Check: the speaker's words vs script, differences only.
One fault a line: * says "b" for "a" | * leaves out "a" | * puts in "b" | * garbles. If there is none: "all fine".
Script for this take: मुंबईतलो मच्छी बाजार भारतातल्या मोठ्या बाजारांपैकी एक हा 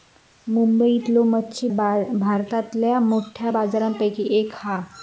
* leaves out "बाजार"